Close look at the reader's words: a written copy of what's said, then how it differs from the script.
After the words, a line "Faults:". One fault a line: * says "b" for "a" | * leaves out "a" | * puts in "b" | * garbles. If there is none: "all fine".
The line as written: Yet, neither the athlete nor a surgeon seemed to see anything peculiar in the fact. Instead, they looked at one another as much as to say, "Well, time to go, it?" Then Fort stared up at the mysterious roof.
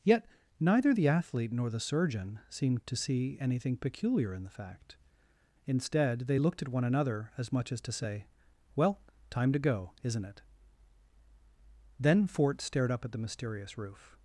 Yet, neither the athlete nor the surgeon seemed to see anything peculiar in the fact. Instead, they looked at one another as much as to say, "Well, time to go, isn't it?" Then Fort stared up at the mysterious roof.
Faults:
* says "the" for "a"
* puts in "isn't"